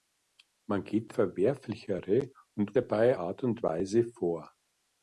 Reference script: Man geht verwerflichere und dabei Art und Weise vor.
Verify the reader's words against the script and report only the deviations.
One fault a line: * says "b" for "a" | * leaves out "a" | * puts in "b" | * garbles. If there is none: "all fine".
all fine